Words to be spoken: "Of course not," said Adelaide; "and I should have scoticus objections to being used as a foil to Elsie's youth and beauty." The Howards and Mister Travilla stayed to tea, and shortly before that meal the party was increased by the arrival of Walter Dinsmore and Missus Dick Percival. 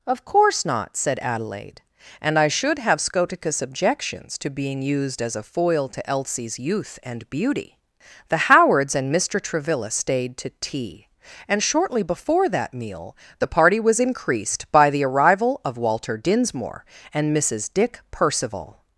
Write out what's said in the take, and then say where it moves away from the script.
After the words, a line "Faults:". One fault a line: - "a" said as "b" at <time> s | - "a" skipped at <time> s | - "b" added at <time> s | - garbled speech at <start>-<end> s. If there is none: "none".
"Of course not," said Adelaide; "and I should have scoticus objections to being used as a foil to Elsie's youth and beauty." The Howards and Mister Travilla stayed to tea, and shortly before that meal the party was increased by the arrival of Walter Dinsmore and Missus Dick Percival.
Faults:
none